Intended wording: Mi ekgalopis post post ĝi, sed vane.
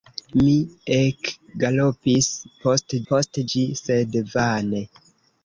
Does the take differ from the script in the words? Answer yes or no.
no